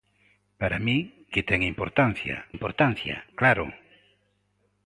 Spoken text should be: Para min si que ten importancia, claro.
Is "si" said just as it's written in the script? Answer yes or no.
no